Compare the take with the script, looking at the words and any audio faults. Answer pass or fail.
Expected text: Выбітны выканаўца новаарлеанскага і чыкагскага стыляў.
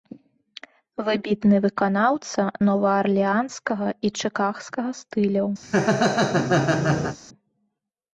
fail